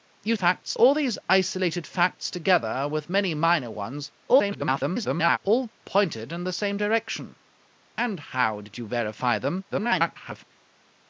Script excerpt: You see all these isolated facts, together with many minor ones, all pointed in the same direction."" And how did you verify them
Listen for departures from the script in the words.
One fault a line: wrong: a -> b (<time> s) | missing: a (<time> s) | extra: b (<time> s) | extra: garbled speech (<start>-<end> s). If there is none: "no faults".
wrong: see -> facts (0.3 s)
extra: garbled speech (4.3-5.4 s)
extra: garbled speech (9.7-10.4 s)